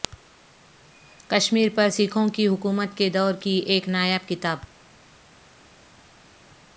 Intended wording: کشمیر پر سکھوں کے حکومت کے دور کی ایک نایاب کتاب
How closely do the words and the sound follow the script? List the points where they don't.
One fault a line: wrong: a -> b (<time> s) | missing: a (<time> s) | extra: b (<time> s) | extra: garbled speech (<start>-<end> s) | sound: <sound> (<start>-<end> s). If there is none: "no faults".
wrong: کے -> کی (2.3 s)